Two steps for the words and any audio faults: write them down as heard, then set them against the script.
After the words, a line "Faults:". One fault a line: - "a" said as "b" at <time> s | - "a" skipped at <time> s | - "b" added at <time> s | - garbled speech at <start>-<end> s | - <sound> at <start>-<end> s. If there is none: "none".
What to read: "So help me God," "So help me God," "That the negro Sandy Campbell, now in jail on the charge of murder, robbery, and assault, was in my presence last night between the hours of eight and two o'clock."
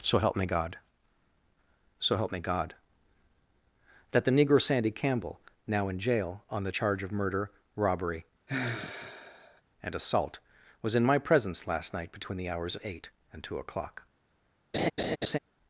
"So help me God," "So help me God," "That the negro Sandy Campbell, now in jail on the charge of murder, robbery, and assault, was in my presence last night between the hours of eight and two o'clock."
Faults:
- sigh at 8.5-9.6 s
- laugh at 14.7-15.4 s